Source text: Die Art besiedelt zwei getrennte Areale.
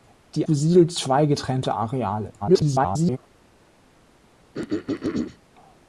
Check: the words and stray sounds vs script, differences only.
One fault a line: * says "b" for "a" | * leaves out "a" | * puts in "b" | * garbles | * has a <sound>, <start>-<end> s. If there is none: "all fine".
* leaves out "Art"
* garbles
* has a throat clearing, 4.5-5.4 s